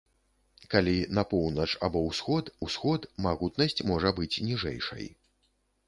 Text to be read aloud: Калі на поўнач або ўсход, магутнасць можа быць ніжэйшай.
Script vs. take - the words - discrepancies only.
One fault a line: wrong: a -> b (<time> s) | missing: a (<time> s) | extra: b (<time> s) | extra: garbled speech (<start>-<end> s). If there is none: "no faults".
extra: ўсход (2.6 s)